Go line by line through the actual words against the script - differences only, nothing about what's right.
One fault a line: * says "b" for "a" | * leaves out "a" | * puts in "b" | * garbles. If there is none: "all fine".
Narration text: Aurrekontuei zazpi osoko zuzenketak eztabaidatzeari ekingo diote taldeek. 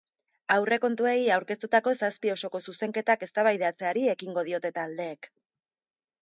* puts in "aurkeztutako"